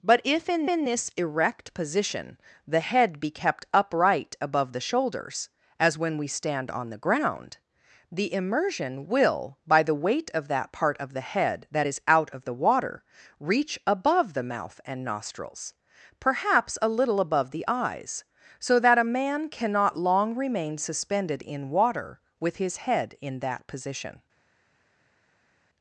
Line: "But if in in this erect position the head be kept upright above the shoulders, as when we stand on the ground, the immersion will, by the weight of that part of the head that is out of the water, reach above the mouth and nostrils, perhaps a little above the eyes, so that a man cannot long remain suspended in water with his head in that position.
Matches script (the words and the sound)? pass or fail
pass